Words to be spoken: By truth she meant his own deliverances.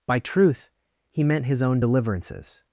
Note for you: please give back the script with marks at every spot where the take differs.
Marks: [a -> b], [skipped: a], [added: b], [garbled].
By truth [she -> he] meant his own deliverances.